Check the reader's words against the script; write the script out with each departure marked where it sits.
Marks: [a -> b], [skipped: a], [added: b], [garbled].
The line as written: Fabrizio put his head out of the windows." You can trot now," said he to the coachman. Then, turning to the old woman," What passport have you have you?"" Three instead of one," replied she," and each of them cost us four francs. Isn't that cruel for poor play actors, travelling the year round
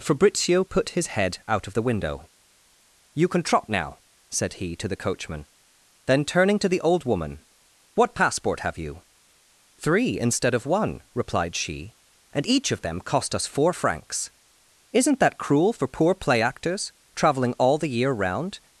Fabrizio put his head out of the [windows." -> window] You can trot now," said he to the coachman. Then, turning to the old woman," What passport have you [skipped: have you?""] Three instead of one," replied she," and each of them cost us four francs. Isn't that cruel for poor play actors, travelling [added: all] the year round